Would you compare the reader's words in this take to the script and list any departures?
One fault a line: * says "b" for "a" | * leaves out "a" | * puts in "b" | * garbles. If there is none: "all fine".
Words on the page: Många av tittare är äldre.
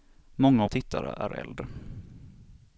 all fine